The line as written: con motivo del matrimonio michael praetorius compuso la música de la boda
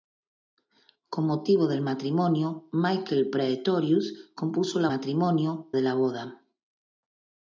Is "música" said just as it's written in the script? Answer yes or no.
no